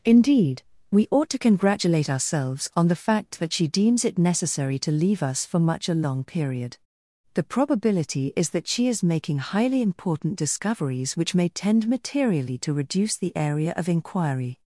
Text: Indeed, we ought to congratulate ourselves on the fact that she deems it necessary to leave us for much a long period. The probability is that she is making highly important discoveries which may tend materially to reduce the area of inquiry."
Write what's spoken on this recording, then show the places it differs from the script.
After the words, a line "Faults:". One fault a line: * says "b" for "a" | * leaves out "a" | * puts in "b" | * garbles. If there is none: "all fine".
Indeed, we ought to congratulate ourselves on the fact that she deems it necessary to leave us for much a long period. The probability is that she is making highly important discoveries which may tend materially to reduce the area of inquiry."
Faults:
all fine